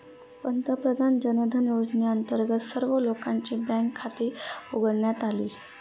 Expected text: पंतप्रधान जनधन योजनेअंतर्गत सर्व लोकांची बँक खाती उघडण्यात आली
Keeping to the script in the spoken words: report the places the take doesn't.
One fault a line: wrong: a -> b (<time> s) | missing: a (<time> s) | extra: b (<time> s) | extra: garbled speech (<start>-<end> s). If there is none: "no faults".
no faults